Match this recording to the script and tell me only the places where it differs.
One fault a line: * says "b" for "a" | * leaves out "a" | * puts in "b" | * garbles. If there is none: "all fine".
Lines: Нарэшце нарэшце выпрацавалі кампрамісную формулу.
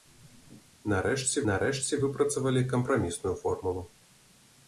all fine